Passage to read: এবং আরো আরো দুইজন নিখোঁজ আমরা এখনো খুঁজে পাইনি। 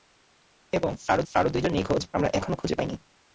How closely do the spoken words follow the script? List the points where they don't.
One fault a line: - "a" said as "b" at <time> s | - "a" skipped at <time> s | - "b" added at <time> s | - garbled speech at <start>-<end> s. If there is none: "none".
none